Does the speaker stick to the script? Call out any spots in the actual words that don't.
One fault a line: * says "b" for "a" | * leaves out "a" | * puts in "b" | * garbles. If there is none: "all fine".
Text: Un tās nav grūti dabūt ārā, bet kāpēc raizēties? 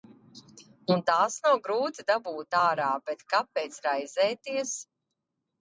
all fine